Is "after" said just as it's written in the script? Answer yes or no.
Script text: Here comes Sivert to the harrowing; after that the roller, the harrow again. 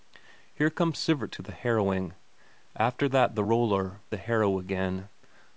yes